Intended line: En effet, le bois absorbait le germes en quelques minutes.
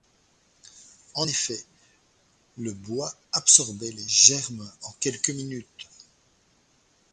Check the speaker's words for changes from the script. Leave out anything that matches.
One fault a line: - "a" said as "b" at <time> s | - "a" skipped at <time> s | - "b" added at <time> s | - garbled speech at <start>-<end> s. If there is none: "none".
- "le" said as "les" at 3.9 s